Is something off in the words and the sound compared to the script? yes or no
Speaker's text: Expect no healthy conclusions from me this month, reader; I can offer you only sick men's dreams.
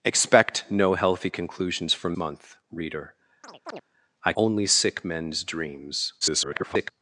yes